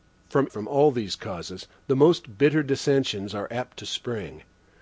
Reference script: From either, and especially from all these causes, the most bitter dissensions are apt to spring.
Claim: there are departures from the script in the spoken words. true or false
true